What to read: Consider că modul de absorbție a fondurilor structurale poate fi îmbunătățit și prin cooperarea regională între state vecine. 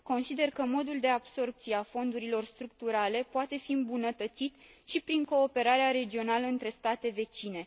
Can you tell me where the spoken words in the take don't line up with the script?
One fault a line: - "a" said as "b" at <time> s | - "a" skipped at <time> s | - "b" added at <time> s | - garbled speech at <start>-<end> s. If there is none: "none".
none